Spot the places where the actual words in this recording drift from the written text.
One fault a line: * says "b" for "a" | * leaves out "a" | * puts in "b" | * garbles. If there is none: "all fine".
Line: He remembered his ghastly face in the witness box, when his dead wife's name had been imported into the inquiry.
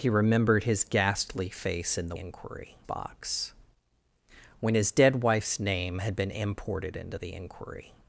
* says "inquiry" for "witness"